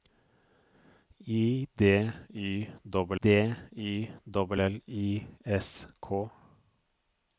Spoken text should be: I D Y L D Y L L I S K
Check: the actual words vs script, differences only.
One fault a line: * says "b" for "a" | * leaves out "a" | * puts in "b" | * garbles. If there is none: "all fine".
all fine